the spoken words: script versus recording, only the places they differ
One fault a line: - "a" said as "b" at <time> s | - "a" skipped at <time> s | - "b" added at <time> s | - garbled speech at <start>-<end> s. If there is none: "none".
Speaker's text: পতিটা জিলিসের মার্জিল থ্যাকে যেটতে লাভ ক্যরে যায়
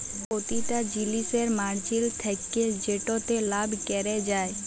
none